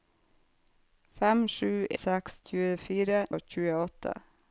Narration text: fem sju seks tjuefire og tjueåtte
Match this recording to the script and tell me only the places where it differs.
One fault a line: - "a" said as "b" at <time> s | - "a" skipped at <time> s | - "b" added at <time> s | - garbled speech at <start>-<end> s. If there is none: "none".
none